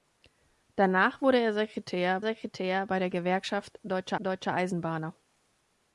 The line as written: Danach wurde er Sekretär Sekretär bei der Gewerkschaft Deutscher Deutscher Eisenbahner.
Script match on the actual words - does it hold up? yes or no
yes